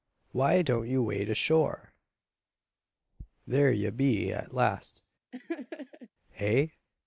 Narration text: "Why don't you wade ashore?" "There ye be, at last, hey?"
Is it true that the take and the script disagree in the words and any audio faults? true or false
true